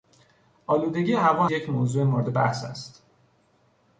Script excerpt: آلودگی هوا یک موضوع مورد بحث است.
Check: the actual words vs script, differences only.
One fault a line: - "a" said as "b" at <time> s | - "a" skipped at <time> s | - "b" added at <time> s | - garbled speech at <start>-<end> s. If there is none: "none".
none